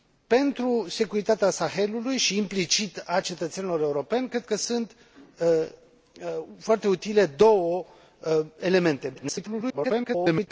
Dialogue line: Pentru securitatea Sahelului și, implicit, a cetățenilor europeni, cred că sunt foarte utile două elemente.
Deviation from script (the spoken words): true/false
true